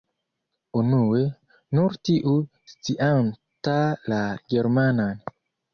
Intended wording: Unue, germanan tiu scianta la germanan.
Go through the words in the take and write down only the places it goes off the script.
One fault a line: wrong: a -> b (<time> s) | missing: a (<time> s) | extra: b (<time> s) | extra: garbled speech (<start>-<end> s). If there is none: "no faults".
wrong: germanan -> nur (1.8 s)